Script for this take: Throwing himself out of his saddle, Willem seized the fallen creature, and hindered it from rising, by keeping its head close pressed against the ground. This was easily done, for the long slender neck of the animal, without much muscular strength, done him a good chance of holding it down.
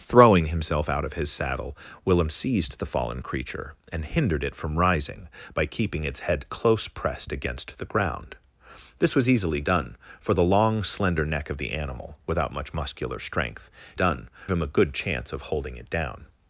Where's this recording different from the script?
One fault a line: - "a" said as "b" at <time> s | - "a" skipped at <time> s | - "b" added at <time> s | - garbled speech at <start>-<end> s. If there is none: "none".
none